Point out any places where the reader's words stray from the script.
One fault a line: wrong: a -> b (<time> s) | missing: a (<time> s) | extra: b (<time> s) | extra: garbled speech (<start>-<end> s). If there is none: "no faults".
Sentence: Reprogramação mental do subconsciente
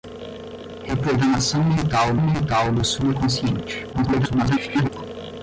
extra: mental (2.2 s)
extra: garbled speech (3.9-4.9 s)